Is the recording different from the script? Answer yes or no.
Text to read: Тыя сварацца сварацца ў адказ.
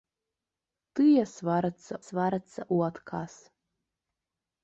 no